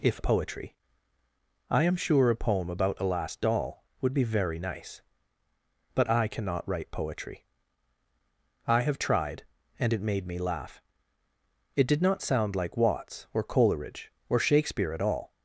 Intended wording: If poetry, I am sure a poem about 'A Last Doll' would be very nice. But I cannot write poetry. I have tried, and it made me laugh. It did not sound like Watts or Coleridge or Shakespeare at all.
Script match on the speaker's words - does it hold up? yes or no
yes